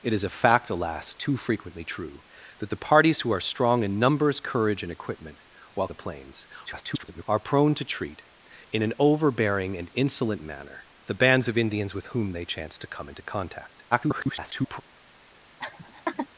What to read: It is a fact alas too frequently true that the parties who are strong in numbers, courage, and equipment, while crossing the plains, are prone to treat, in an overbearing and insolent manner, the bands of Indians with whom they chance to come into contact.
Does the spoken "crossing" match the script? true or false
false